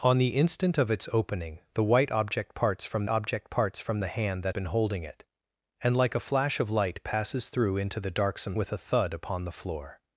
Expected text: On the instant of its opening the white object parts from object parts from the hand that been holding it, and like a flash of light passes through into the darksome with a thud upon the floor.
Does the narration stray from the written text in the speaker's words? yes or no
no